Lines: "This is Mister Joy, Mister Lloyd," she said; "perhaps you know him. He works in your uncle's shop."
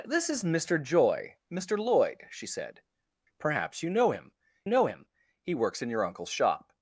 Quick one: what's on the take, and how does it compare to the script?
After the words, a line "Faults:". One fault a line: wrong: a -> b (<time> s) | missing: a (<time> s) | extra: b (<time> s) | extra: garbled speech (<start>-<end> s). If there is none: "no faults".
"This is Mister Joy, Mister Lloyd," she said; "perhaps you know him know him. He works in your uncle's shop."
Faults:
extra: know him (4.7 s)